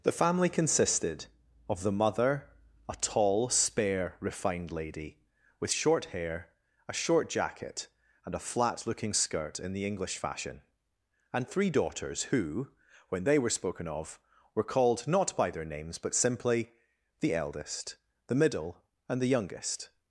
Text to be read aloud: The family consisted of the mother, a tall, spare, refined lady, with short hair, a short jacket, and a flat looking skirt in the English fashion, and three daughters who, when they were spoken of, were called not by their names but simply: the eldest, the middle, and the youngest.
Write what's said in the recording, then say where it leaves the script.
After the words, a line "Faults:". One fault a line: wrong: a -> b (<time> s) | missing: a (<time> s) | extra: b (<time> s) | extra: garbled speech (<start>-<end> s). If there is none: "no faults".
The family consisted of the mother, a tall, spare, refined lady, with short hair, a short jacket, and a flat looking skirt in the English fashion, and three daughters who, when they were spoken of, were called not by their names but simply: the eldest, the middle, and the youngest.
Faults:
no faults